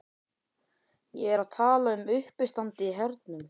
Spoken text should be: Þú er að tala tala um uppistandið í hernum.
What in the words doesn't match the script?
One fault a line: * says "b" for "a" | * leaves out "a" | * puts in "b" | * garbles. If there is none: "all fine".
* says "Ég" for "Þú"
* leaves out "tala"